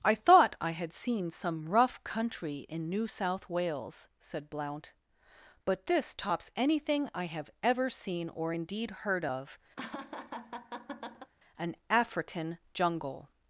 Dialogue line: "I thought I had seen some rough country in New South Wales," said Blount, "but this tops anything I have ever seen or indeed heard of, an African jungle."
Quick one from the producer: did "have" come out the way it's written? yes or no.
yes